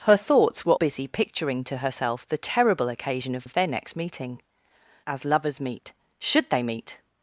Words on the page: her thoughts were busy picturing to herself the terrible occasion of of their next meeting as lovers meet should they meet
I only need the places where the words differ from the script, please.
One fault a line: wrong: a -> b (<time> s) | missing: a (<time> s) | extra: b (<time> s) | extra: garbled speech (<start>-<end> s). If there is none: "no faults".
no faults